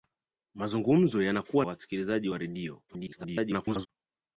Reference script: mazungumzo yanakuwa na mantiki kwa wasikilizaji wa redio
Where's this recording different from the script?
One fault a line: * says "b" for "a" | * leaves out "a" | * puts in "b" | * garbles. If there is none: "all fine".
* leaves out "na mantiki kwa"
* garbles